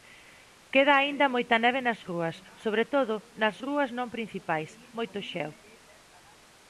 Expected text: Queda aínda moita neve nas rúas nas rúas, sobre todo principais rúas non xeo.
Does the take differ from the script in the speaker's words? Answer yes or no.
yes